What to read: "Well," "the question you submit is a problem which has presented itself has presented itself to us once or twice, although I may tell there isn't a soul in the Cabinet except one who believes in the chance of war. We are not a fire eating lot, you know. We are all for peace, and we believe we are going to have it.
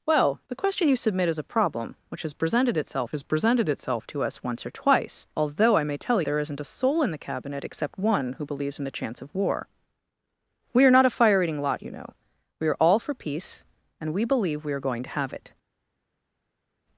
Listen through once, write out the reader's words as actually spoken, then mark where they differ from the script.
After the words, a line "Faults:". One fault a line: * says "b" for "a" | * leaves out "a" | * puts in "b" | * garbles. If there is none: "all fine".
"Well," "the question you submit is a problem which has presented itself has presented itself to us once or twice, although I may tell there isn't a soul in the Cabinet except one who believes in the chance of war. We are not a fire eating lot, you know. We are all for peace, and we believe we are going to have it.
Faults:
all fine